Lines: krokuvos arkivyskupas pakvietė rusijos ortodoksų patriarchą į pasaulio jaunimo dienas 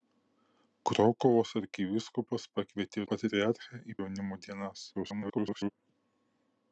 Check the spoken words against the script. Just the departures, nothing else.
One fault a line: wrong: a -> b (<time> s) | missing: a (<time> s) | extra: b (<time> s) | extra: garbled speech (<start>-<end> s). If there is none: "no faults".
missing: rusijos ortodoksų (3.0 s)
missing: pasaulio (4.0 s)
extra: garbled speech (4.9-5.7 s)